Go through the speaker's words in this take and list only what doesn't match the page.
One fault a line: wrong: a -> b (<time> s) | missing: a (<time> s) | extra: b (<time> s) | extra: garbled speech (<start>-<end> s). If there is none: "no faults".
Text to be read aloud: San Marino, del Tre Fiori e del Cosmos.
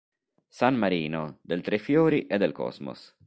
no faults